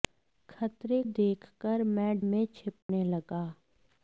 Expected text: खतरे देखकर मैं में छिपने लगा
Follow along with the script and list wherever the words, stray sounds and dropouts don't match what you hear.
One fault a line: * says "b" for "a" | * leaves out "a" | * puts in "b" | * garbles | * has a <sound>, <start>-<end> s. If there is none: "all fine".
* has a dropout, 2.8-2.9 s